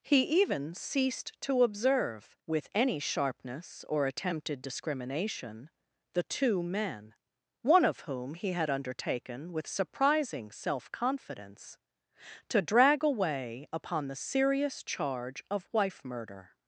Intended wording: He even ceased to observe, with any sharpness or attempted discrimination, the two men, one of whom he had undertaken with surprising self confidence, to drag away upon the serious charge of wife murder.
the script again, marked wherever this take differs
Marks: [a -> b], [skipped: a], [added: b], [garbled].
He even ceased to observe, with any sharpness or attempted discrimination, the two men, one of whom he had undertaken with surprising self confidence, to drag away upon the serious charge of wife murder.